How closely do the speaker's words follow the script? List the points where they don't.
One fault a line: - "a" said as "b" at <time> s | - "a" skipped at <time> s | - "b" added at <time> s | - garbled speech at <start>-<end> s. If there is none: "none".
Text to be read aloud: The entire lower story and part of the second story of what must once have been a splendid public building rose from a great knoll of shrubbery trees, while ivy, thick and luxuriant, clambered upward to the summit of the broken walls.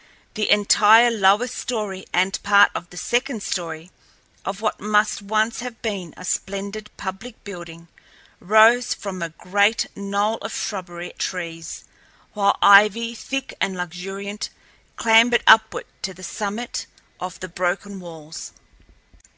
none